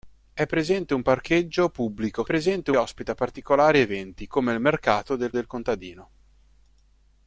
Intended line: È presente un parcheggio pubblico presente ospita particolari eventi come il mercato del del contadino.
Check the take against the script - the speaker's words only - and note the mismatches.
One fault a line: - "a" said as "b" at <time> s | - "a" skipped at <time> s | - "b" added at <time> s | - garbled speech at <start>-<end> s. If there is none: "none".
none